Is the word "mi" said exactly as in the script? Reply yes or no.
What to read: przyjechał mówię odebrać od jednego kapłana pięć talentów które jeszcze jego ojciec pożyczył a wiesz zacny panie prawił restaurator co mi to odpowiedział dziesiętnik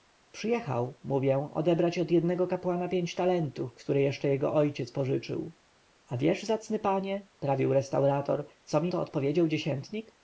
yes